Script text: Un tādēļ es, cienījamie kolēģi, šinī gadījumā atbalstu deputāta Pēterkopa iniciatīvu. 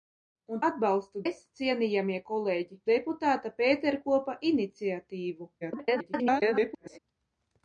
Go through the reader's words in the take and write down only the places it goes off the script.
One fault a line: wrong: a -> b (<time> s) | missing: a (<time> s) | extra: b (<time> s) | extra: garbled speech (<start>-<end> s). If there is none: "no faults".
wrong: tādēļ -> atbalstu (0.7 s)
missing: šinī gadījumā atbalstu (2.8 s)
extra: garbled speech (5.6-7.0 s)